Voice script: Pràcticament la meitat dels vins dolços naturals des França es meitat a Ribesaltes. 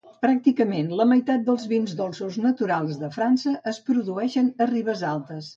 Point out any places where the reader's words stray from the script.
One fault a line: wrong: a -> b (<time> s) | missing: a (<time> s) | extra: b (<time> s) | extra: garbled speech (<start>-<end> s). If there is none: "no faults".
wrong: des -> de (3.0 s)
wrong: meitat -> produeixen (3.9 s)